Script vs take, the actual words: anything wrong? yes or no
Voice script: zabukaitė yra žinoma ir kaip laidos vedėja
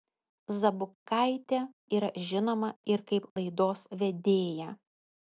no